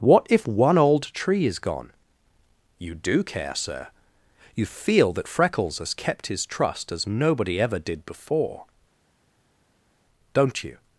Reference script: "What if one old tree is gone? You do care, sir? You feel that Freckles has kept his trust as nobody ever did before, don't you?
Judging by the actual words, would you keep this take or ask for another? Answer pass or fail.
pass